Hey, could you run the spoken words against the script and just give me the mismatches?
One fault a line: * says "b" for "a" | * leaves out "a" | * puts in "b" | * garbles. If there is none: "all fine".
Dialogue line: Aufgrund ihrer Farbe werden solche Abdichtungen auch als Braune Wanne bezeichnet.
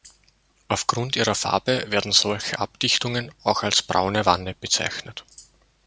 all fine